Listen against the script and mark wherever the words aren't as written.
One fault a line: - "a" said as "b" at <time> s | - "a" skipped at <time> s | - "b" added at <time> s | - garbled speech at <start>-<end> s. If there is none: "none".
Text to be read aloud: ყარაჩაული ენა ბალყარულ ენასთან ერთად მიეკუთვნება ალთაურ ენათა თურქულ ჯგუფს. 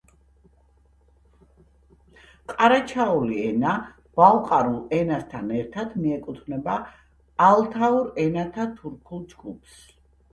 none